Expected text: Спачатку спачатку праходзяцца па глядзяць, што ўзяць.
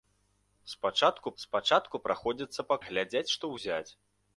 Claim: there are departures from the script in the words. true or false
false